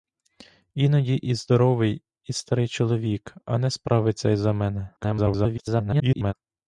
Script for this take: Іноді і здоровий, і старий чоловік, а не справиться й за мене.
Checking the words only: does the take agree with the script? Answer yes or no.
no